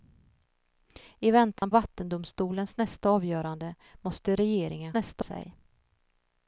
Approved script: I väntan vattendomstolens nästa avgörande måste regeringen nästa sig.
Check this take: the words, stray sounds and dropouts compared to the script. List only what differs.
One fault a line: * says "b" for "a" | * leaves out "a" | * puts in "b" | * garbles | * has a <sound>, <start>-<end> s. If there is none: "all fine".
* has a dropout, 1.6-1.6 s